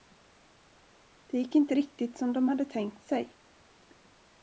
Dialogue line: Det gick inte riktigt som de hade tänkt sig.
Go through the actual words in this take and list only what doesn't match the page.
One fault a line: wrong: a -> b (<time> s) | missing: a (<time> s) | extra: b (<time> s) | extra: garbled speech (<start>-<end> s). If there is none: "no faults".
no faults